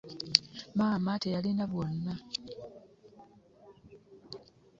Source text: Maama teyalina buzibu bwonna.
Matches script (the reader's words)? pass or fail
fail